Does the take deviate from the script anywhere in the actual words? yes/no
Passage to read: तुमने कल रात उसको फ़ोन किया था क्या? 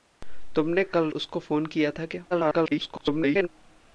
yes